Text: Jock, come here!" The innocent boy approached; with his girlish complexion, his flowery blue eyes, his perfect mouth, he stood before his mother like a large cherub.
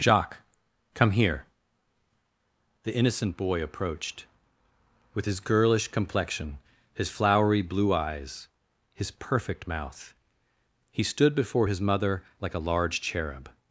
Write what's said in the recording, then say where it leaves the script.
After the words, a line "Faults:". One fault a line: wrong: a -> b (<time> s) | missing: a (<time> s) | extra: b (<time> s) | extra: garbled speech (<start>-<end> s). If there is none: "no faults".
Jacques, come here!" The innocent boy approached; with his girlish complexion, his flowery blue eyes, his perfect mouth, he stood before his mother like a large cherub.
Faults:
wrong: Jock -> Jacques (0.0 s)